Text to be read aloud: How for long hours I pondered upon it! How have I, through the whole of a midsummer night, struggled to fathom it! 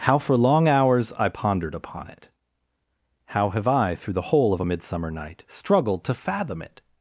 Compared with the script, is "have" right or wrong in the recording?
right